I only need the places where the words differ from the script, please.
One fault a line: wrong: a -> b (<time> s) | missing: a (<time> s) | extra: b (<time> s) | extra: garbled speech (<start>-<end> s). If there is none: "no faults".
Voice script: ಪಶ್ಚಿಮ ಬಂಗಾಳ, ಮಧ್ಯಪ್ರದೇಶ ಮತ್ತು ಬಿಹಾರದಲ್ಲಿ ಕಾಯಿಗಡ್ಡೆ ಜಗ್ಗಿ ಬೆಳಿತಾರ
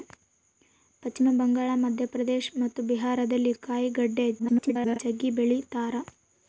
extra: garbled speech (4.4-5.0 s)